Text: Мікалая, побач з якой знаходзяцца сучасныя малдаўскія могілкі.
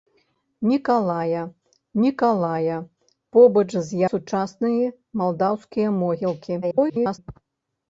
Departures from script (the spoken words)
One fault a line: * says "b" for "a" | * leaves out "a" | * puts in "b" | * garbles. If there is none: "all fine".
* puts in "мікалая"
* leaves out "якой знаходзяцца"
* garbles